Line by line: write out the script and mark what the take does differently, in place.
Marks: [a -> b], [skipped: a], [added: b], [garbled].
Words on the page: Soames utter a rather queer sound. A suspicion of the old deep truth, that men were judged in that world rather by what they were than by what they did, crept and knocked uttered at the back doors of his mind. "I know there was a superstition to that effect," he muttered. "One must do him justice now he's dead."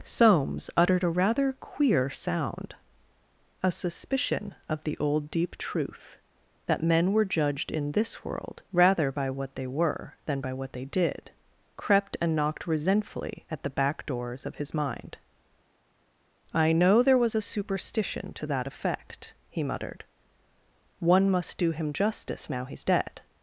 Soames [utter -> uttered] a rather queer sound. A suspicion of the old deep truth, that men were judged in [that -> this] world rather by what they were than by what they did, crept and knocked [uttered -> resentfully] at the back doors of his mind. "I know there was a superstition to that effect," he muttered. "One must do him justice now he's dead."